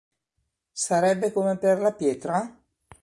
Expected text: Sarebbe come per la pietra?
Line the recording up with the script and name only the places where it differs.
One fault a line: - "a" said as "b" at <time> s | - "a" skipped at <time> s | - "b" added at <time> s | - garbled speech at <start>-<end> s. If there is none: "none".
none